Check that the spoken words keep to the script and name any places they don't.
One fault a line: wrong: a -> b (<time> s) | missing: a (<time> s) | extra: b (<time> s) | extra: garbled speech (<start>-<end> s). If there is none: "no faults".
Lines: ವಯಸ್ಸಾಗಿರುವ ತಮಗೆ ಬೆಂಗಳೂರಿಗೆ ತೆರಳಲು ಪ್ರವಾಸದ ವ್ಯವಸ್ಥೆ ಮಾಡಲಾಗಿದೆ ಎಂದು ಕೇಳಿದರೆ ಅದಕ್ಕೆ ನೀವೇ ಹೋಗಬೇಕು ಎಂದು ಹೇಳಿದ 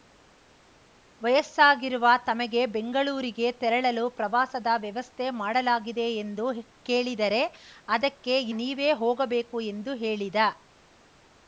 no faults